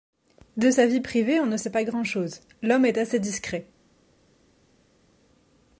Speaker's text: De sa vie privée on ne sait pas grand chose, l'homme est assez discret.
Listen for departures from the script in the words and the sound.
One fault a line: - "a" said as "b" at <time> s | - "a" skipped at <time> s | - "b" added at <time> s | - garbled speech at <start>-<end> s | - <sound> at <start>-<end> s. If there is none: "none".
none